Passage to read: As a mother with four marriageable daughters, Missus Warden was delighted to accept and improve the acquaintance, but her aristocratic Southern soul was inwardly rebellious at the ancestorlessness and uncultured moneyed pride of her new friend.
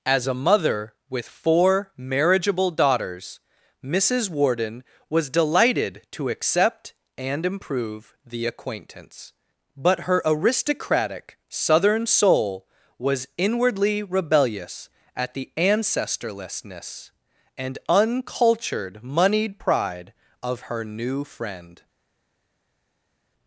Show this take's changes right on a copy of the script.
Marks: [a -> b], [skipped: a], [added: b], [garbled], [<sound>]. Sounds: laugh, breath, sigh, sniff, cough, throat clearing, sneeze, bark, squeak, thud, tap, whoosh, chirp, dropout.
As a mother with four marriageable daughters, Missus Warden was delighted to accept and improve the acquaintance, but her aristocratic Southern soul was inwardly rebellious at the ancestorlessness and uncultured moneyed pride of her new friend.